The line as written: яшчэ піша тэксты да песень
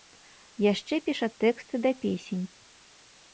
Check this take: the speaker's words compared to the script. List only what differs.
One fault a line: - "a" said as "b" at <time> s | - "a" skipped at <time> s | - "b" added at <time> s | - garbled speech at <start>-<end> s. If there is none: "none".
none